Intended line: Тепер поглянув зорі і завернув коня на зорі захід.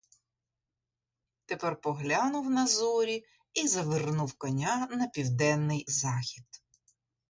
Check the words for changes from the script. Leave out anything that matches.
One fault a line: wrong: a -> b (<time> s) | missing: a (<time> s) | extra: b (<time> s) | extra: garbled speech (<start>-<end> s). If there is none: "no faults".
extra: на (2.5 s)
wrong: зорі -> південний (5.1 s)